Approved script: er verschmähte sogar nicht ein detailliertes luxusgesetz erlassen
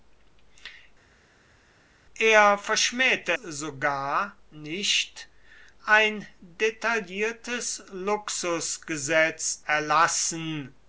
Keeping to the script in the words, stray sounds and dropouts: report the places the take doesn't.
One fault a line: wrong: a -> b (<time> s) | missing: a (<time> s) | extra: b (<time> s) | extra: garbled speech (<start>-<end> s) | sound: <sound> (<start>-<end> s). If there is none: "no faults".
no faults